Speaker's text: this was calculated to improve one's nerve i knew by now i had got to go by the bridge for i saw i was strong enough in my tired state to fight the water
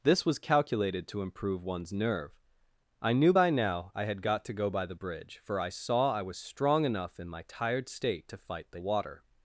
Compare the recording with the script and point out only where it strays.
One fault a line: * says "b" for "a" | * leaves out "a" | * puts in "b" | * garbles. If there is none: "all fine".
all fine